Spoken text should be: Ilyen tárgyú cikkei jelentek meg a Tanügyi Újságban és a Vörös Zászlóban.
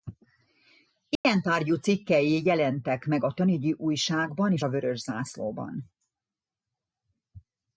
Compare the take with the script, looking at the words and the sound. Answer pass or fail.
fail